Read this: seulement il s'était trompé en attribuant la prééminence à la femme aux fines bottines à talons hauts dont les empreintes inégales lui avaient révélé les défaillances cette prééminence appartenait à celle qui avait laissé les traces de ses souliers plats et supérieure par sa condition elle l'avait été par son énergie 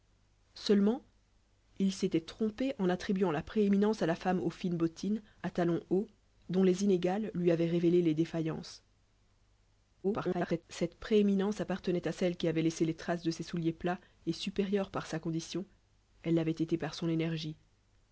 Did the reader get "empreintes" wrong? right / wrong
wrong